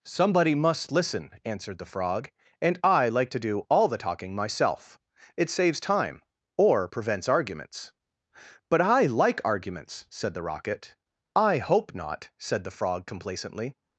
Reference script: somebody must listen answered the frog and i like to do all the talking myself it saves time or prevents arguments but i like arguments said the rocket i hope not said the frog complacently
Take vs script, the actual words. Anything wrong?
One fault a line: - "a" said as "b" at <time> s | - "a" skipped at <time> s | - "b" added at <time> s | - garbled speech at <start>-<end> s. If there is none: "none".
none